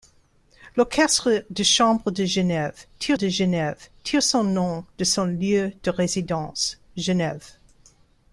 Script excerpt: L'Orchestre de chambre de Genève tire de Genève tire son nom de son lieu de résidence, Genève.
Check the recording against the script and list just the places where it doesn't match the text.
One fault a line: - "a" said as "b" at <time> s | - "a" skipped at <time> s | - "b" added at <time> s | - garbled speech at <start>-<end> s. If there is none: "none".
none